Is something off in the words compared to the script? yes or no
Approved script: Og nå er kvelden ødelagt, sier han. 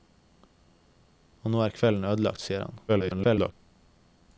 yes